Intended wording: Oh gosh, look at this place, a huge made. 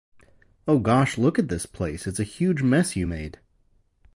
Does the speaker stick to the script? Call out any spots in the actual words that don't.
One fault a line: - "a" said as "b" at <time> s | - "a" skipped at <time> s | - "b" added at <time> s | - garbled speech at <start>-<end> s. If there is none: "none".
- "it's" added at 2.1 s
- "mess you" added at 2.6 s